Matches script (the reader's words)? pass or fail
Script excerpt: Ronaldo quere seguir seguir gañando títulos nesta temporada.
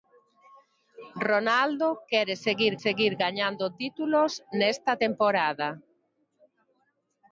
pass